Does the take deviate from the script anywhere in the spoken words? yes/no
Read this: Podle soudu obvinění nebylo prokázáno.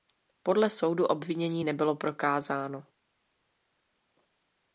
no